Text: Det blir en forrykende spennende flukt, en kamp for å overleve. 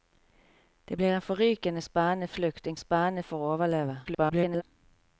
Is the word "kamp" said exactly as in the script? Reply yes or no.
no